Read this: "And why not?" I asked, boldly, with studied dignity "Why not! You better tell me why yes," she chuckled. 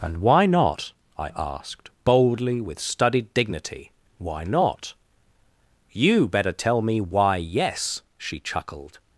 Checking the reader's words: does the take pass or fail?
pass